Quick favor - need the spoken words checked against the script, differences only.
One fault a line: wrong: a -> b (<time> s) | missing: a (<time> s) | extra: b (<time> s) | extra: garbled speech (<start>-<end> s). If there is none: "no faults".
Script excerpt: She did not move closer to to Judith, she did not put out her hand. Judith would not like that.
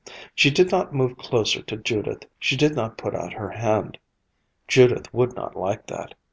missing: to (1.8 s)